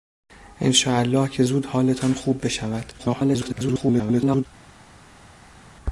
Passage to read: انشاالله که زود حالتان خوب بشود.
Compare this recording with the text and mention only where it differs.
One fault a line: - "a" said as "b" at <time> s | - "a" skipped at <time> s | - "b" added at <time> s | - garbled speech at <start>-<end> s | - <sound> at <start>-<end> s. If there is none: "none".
- garbled speech at 3.0-4.5 s